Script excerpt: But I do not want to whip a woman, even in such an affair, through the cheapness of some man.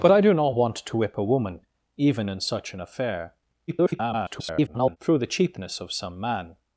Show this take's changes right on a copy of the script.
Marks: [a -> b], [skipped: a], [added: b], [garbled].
But I do not want to whip a woman, even in such an affair, [garbled] through the cheapness of some man.